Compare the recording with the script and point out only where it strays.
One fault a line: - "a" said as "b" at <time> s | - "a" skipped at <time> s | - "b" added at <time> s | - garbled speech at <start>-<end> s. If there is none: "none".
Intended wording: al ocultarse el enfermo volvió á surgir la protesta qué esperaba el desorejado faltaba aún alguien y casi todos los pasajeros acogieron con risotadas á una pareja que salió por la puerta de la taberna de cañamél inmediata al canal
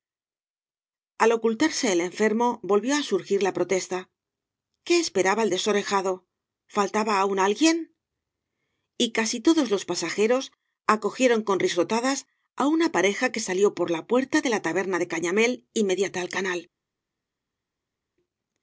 none